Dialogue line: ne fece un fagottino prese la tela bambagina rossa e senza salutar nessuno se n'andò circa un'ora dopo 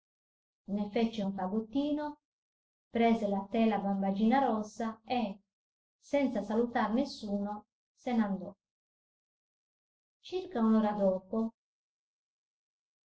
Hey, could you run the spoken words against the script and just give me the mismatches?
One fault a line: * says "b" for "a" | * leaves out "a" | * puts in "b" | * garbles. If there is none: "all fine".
all fine